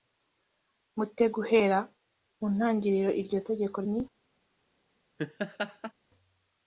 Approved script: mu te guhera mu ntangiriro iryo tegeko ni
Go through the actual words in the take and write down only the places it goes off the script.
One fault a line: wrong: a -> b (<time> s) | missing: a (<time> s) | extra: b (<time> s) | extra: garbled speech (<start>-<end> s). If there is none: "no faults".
no faults